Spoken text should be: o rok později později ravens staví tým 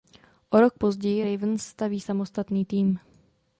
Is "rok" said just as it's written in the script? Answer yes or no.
yes